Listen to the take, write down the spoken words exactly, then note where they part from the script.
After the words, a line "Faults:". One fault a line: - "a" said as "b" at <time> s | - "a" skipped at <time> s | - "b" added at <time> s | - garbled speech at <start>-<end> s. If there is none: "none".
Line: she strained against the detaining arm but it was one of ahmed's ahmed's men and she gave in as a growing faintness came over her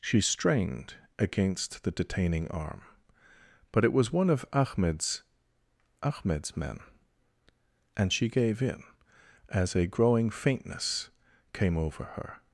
she strained against the detaining arm but it was one of ahmed's ahmed's men and she gave in as a growing faintness came over her
Faults:
none